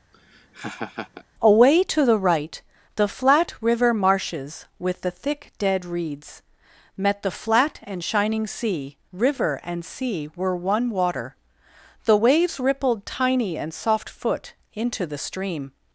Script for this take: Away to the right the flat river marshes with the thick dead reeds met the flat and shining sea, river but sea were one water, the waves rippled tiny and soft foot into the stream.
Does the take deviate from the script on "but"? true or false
true